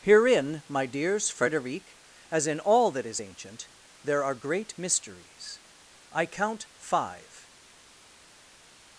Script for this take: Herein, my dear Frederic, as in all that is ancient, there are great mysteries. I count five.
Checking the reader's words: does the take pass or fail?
fail